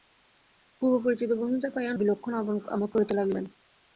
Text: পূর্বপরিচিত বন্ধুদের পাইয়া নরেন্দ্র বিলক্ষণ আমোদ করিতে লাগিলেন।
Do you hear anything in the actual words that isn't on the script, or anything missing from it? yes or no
yes